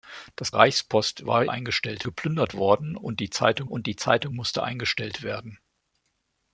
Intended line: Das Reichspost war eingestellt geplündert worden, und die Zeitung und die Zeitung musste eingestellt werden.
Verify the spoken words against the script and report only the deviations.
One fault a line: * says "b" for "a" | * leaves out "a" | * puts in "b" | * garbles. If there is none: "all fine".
all fine